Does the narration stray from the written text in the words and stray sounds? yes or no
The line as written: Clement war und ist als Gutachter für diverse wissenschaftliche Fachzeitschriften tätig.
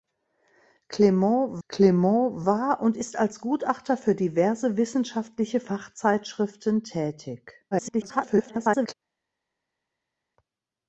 yes